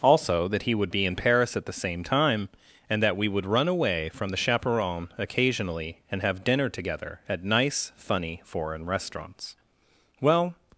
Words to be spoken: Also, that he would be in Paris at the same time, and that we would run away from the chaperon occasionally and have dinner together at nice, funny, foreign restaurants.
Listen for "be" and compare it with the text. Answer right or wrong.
right